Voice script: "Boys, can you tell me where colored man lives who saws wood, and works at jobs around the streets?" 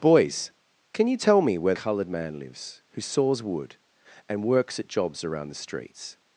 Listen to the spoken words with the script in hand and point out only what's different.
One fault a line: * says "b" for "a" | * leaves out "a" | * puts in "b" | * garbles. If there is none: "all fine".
all fine